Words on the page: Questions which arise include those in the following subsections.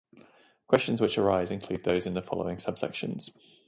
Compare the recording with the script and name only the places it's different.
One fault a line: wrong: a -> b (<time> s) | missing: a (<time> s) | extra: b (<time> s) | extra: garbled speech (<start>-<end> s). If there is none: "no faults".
no faults